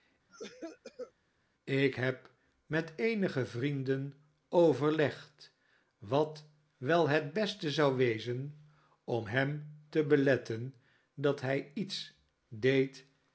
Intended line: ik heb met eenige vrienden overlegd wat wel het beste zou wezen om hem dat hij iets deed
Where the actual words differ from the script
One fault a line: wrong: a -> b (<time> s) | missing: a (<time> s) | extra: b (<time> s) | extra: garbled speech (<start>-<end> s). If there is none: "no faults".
extra: te beletten (9.9 s)